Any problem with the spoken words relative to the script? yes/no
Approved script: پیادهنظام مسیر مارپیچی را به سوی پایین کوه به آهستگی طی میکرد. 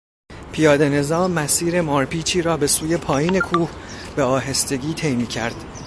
no